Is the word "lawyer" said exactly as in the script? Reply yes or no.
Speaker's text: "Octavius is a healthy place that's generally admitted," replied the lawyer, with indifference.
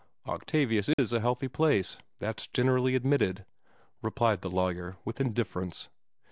yes